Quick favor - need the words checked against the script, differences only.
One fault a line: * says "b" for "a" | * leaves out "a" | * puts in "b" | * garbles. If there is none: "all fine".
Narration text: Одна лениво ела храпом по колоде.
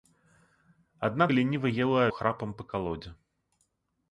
all fine